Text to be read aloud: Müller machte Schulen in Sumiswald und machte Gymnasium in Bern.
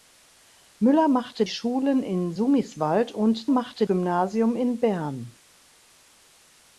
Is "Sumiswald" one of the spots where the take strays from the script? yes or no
no